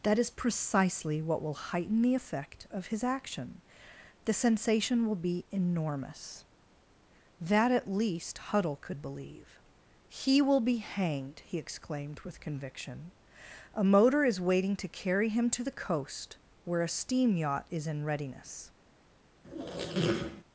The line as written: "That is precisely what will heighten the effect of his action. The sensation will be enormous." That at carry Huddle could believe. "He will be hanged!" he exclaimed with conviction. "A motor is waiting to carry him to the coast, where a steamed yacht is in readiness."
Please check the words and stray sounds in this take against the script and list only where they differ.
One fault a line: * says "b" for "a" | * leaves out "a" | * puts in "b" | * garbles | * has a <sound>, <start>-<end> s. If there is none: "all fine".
* says "least" for "carry"
* says "steam" for "steamed"
* has a squeak, 19.4-20.4 s